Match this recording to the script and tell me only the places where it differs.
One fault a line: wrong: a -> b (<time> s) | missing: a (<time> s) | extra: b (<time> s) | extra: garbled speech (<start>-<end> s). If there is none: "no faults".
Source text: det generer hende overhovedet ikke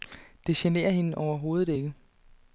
no faults